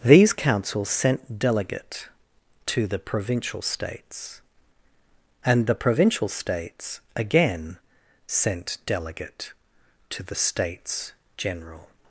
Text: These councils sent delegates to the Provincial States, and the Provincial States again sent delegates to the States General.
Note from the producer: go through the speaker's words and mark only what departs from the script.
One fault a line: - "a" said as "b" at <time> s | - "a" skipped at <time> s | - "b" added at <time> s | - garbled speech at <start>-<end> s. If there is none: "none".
- "delegates" said as "delegate" at 1.4 s
- "delegates" said as "delegate" at 8.9 s